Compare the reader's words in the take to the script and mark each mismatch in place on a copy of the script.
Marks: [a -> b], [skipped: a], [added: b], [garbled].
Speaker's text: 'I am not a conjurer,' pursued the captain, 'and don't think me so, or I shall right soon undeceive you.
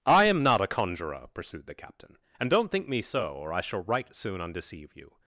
'I am not a conjurer,' pursued the captain, 'and don't think me so, or I shall right soon undeceive you.